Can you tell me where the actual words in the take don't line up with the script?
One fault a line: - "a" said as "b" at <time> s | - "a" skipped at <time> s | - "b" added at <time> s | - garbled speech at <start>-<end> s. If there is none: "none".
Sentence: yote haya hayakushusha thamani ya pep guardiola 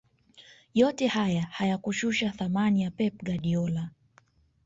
none